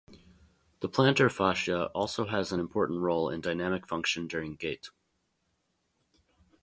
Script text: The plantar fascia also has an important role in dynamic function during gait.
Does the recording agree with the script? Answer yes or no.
yes